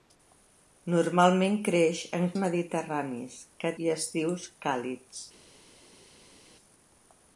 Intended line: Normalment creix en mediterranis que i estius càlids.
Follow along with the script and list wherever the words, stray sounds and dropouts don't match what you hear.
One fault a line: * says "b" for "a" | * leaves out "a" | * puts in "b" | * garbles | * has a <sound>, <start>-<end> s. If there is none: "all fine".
all fine